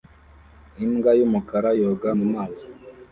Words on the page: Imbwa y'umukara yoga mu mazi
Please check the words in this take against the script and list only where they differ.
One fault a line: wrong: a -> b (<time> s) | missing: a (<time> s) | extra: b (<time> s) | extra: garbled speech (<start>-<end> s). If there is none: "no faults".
no faults